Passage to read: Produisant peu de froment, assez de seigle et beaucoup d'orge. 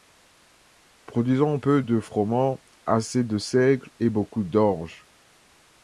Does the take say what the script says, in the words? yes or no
yes